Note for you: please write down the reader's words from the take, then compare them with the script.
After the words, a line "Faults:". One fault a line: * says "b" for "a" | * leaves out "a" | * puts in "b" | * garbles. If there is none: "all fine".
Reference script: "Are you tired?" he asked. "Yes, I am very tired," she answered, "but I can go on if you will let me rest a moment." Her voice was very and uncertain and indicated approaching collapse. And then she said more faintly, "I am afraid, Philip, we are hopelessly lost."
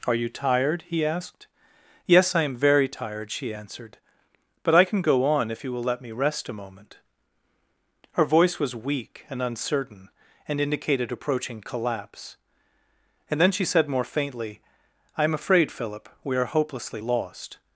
"Are you tired?" he asked. "Yes, I am very tired," she answered, "but I can go on if you will let me rest a moment." Her voice was weak and uncertain and indicated approaching collapse. And then she said more faintly, "I am afraid, Philip, we are hopelessly lost."
Faults:
* says "weak" for "very"